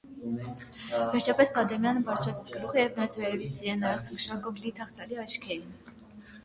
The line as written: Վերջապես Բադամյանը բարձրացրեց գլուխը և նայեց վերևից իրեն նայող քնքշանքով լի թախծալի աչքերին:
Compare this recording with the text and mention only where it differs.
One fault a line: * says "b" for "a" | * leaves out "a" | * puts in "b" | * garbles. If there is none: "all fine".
all fine